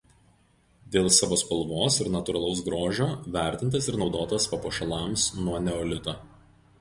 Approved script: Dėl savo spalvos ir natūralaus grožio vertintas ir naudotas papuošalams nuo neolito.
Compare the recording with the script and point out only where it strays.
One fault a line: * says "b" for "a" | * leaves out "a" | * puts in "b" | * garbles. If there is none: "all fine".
all fine